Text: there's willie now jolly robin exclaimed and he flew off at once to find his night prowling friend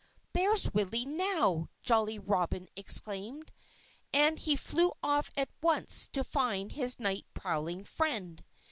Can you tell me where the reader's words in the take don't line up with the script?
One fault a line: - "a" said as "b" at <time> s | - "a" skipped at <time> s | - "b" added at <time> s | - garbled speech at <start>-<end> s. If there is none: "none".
none